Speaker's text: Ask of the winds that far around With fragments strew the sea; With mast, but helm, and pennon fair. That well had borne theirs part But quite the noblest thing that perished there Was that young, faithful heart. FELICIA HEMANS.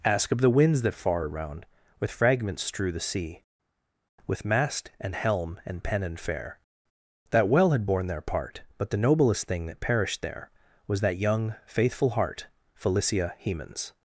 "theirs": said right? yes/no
no